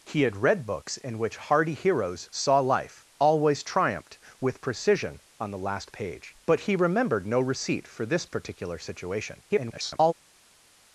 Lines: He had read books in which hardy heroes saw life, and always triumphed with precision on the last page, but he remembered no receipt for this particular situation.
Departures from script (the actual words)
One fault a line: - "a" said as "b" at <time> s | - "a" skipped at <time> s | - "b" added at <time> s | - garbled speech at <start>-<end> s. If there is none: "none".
- "and" skipped at 3.0 s
- garbled speech at 9.5-10.1 s